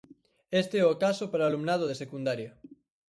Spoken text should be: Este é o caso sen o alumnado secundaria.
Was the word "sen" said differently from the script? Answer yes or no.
yes